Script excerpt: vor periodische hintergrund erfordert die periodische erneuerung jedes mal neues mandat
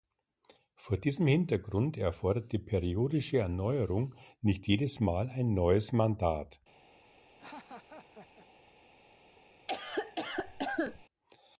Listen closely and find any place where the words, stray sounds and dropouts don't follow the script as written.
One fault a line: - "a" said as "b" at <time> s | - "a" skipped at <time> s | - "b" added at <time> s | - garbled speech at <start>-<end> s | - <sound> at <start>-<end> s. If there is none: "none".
- "periodische" said as "diesem" at 1.0 s
- "nicht" added at 4.4 s
- "ein" added at 5.3 s
- laugh at 7.3-8.5 s
- cough at 9.7-11.0 s